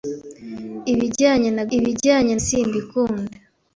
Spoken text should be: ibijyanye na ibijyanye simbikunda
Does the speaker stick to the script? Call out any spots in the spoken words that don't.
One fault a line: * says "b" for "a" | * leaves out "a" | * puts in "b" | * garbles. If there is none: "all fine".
all fine